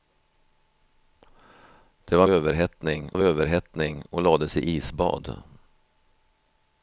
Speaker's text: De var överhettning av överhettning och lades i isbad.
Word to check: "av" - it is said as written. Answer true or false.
true